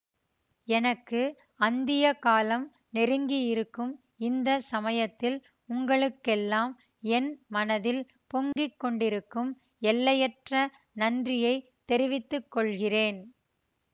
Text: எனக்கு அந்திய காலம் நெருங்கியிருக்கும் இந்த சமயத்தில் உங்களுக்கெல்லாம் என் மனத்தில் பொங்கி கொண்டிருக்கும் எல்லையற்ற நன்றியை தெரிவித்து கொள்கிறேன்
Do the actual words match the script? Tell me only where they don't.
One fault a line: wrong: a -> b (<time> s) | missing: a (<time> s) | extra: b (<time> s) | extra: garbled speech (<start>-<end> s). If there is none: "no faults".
no faults